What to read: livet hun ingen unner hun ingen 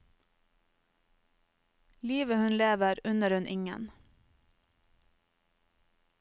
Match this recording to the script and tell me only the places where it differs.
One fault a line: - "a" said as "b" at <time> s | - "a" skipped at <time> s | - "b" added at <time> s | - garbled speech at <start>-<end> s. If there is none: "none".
- "ingen" said as "lever" at 2.6 s